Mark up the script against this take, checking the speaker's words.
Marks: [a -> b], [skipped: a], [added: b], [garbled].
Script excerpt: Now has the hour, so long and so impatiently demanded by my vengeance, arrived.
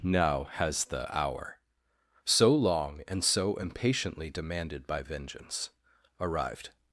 Now has the hour, so long and so impatiently demanded by [skipped: my] vengeance, arrived.